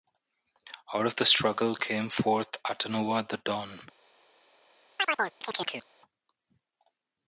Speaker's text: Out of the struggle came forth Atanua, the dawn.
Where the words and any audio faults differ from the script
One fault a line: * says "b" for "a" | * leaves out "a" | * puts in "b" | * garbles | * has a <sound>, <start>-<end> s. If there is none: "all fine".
* has a chirp, 5.0-5.9 s